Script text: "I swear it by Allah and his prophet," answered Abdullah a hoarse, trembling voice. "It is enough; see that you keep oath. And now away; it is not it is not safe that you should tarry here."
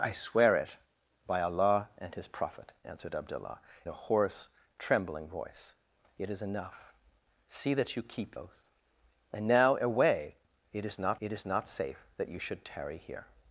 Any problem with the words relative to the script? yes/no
no